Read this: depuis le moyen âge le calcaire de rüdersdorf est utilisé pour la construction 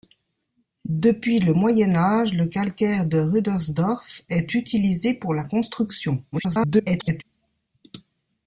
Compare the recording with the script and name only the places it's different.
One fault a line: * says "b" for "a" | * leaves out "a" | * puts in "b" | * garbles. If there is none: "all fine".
* garbles